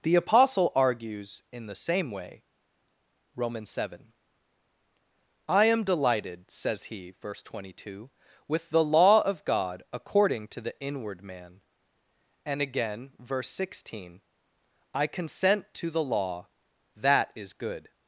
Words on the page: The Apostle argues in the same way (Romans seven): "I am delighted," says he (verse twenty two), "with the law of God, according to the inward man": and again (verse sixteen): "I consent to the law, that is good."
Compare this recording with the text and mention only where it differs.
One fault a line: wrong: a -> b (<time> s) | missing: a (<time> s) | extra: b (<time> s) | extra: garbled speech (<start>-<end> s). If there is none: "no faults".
no faults